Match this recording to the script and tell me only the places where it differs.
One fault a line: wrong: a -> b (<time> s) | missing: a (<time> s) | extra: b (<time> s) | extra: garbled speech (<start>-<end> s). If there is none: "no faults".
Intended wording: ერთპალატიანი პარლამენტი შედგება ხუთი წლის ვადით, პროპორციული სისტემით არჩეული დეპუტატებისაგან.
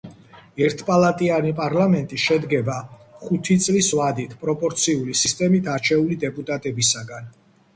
no faults